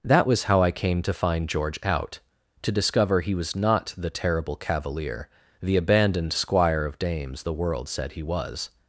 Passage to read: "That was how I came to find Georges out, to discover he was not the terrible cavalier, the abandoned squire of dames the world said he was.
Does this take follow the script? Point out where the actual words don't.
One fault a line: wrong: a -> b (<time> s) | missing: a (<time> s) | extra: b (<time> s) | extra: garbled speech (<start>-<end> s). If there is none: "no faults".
wrong: Georges -> George (1.5 s)